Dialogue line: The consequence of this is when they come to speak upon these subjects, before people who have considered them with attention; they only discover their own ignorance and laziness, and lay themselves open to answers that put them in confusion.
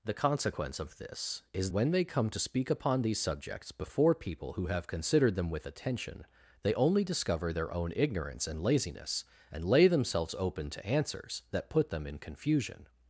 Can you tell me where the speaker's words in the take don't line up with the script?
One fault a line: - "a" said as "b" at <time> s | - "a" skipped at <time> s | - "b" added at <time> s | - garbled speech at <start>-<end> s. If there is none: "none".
none